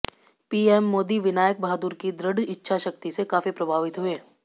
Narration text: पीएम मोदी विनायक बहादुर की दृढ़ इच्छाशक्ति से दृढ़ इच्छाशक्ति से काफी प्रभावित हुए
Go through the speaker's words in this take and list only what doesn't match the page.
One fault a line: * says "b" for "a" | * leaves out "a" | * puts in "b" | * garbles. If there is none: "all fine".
* leaves out "दृढ़ इच्छाशक्ति से"